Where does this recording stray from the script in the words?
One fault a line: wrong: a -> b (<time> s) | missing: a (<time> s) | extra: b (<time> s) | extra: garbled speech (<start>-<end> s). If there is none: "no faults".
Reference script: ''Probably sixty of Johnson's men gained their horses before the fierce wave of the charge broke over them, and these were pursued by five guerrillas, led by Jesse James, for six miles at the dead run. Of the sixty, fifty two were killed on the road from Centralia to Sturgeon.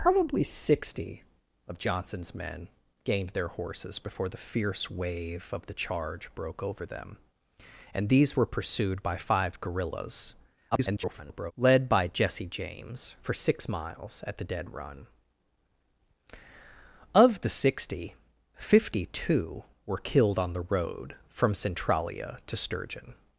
extra: garbled speech (10.7-11.5 s)